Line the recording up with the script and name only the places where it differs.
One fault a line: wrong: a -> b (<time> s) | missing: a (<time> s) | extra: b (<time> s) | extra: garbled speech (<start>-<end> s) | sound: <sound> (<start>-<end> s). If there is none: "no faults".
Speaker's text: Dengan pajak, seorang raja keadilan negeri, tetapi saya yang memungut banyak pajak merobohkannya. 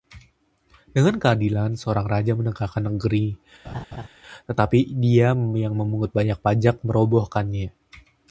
wrong: pajak -> keadilan (1.2 s)
wrong: keadilan -> menegakkan (2.3 s)
sound: laugh (3.6-4.1 s)
wrong: saya -> dia (5.0 s)